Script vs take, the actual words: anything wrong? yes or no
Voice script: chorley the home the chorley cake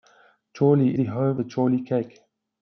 no